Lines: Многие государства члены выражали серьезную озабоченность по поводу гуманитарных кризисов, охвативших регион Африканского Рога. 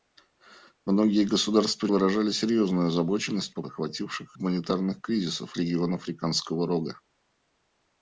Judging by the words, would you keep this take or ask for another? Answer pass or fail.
fail